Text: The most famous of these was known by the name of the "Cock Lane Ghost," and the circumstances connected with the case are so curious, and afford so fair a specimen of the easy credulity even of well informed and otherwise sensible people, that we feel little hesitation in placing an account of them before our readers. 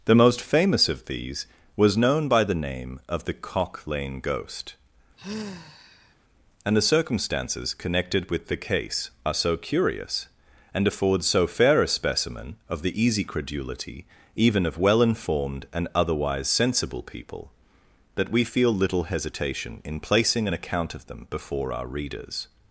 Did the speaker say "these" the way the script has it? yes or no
yes